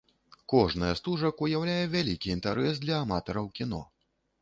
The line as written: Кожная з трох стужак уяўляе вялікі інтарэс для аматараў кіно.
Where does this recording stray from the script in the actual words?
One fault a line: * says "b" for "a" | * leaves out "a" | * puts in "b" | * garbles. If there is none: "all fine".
* leaves out "трох"